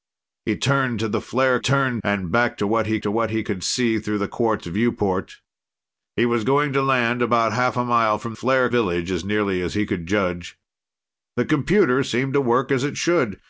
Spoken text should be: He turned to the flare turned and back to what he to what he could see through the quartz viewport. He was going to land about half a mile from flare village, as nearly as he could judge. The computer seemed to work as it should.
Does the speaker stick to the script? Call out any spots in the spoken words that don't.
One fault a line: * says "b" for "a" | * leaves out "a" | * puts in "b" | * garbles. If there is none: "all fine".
all fine